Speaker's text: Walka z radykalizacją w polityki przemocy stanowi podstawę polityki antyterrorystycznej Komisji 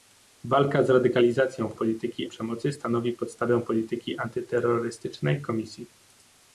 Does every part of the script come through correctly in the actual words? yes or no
yes